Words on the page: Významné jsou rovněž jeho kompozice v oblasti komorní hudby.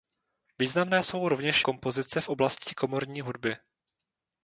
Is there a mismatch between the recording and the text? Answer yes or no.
yes